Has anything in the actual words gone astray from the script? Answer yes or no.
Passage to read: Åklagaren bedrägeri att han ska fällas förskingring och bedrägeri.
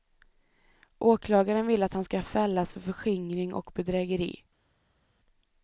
yes